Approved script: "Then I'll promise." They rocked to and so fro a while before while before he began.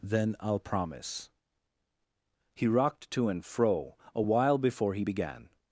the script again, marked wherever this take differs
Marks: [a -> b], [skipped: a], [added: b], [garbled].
"Then I'll promise." [They -> He] rocked to and [skipped: so] fro a while before [skipped: while before] he began.